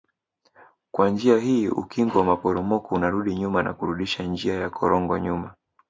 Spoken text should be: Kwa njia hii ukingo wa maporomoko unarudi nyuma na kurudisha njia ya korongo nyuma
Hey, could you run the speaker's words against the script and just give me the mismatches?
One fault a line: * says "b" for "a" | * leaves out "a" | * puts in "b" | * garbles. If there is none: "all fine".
all fine